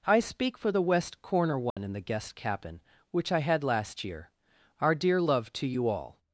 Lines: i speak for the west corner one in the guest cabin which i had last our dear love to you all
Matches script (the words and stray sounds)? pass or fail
fail